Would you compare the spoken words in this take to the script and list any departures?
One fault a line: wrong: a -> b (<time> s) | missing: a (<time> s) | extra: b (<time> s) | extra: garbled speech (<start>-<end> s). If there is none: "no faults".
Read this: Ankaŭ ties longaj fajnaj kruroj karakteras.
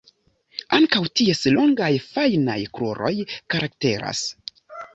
no faults